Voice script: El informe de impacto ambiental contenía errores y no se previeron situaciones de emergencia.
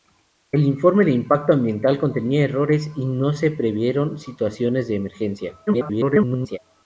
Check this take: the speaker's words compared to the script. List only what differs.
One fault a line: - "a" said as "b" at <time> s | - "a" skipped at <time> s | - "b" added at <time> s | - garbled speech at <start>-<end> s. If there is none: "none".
- garbled speech at 5.7-6.6 s